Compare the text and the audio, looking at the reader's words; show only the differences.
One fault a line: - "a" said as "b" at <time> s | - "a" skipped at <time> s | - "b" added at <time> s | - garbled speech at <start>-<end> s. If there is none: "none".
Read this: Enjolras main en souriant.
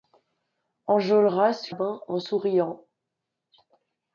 none